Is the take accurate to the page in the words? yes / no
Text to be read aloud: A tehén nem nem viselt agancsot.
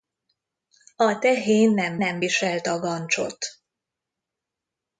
yes